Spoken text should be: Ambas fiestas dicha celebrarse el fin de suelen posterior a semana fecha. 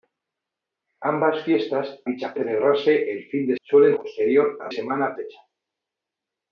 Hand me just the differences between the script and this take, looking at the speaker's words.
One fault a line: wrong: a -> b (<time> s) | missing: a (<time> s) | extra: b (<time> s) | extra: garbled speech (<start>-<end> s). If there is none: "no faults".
no faults